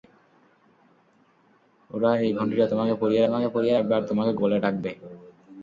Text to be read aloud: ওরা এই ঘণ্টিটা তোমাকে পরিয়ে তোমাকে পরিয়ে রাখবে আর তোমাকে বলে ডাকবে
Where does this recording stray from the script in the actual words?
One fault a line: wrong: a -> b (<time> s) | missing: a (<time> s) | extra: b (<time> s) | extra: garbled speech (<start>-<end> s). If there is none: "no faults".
no faults